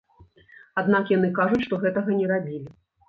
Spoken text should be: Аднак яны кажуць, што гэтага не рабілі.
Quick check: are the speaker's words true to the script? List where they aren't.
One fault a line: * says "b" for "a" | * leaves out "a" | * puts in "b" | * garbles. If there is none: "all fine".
all fine